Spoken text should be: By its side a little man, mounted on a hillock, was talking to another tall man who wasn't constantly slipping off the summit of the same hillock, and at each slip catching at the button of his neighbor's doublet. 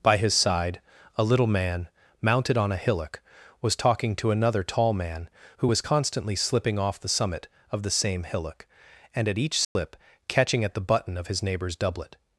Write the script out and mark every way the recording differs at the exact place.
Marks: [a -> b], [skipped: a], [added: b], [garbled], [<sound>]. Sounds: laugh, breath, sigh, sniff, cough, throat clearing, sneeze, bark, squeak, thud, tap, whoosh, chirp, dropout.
By [its -> his] side a little man, mounted on a hillock, was talking to another tall man who [wasn't -> was] constantly slipping off the summit of the same hillock, and at each slip [dropout] catching at the button of his neighbor's doublet.